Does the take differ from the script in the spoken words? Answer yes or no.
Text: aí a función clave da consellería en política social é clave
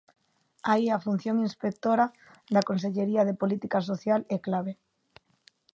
yes